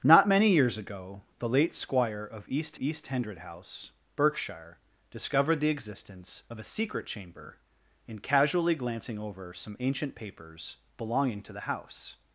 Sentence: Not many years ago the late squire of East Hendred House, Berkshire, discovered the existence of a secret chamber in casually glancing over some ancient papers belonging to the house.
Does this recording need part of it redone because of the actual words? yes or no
yes